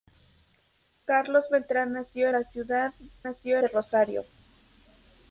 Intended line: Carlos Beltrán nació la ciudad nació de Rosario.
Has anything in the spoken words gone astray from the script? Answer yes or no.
no